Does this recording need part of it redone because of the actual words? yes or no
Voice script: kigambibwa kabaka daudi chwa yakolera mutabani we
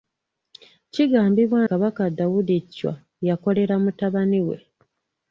no